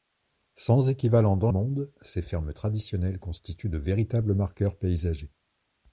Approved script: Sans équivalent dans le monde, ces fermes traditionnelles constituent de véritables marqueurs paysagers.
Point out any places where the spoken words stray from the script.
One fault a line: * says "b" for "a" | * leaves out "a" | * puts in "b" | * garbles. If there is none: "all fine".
* leaves out "le"